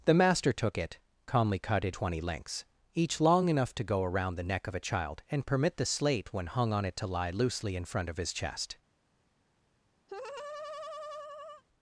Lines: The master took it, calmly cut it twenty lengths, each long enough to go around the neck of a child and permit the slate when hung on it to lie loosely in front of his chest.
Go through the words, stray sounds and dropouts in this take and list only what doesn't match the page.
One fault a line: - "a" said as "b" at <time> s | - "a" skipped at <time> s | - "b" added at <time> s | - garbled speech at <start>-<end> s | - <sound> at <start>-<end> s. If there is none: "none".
- laugh at 10.1-11.6 s